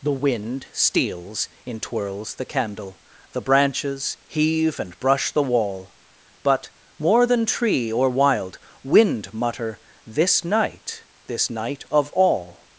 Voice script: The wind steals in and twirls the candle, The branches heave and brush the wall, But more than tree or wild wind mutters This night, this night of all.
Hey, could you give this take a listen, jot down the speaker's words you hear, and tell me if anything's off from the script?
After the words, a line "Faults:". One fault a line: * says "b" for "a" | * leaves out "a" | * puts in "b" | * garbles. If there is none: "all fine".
The wind steals in twirls the candle, The branches heave and brush the wall, But more than tree or wild wind mutter This night, this night of all.
Faults:
* leaves out "and"
* says "mutter" for "mutters"